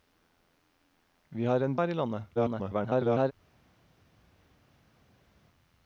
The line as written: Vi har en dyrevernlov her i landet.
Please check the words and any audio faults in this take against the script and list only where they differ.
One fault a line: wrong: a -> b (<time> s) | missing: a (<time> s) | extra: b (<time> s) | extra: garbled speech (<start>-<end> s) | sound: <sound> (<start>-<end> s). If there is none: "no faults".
missing: dyrevernlov (1.8 s)
extra: garbled speech (2.3-3.3 s)